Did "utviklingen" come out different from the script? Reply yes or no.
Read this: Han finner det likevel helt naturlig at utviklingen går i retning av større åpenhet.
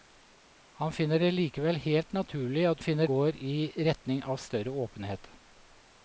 yes